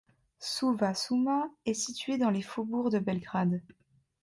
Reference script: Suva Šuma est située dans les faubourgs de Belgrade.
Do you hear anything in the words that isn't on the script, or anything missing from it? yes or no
no